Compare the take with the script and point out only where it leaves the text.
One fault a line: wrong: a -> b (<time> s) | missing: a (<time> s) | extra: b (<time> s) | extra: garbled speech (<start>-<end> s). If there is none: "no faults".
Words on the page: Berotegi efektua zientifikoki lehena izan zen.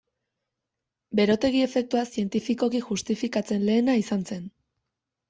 extra: justifikatzen (2.9 s)